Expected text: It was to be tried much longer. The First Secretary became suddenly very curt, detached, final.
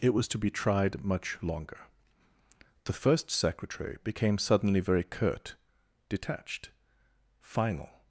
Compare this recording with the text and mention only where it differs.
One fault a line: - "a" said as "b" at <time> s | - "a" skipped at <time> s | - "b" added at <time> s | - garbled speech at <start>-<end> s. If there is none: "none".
none